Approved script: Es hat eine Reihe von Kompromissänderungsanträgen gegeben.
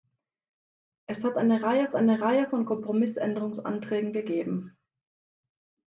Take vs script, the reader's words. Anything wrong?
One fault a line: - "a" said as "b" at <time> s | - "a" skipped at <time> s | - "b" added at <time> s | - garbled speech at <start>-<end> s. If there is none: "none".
- "eine Reihe" added at 2.0 s